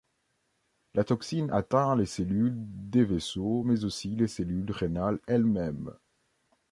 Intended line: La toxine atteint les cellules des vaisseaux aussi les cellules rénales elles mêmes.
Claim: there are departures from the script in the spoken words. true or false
true